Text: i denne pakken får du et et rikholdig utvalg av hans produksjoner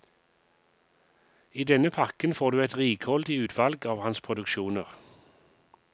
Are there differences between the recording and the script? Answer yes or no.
yes